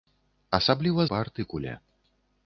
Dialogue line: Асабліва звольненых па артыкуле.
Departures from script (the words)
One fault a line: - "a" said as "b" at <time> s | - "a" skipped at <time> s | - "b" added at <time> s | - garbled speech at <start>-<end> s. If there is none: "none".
- "звольненых" skipped at 1.1 s